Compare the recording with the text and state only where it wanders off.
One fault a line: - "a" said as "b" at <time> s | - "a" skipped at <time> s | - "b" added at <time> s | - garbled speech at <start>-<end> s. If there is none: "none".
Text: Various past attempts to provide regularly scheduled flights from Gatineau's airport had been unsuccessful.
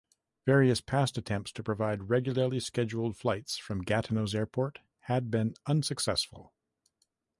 none